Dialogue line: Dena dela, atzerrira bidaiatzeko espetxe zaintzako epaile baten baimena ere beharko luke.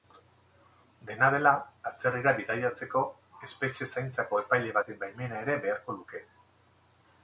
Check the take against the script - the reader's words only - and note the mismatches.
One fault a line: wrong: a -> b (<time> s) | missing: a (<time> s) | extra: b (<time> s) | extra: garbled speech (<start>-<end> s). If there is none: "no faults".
no faults